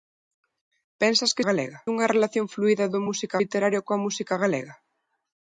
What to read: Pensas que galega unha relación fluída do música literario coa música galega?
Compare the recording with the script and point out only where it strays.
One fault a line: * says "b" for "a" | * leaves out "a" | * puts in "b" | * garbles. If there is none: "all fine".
all fine